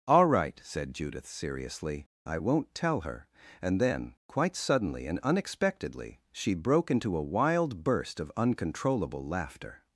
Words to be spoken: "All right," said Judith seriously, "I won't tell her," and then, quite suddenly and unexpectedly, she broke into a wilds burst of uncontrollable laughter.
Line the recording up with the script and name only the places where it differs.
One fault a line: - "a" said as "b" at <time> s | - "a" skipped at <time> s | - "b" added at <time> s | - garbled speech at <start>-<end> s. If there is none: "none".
- "wilds" said as "wild" at 7.2 s